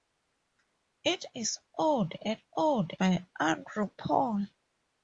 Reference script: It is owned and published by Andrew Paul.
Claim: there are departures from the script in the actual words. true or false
true